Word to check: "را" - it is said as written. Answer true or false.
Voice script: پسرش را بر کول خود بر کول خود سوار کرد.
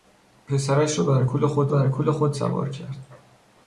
true